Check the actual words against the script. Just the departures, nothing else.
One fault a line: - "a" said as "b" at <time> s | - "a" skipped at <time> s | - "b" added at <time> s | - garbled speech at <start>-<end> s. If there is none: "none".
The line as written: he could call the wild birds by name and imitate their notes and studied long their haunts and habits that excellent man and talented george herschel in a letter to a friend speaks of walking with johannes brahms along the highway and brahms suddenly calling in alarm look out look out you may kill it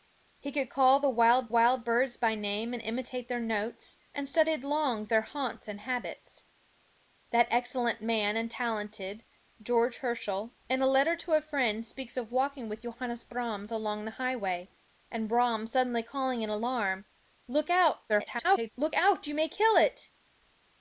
- "wild" added at 1.5 s
- garbled speech at 18.1-18.7 s